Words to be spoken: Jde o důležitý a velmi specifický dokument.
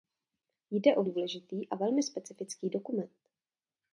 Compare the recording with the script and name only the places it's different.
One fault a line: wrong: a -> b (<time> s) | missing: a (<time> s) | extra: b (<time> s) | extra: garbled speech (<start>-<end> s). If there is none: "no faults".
no faults